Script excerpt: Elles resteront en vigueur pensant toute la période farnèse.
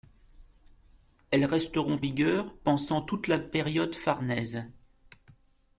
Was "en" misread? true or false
true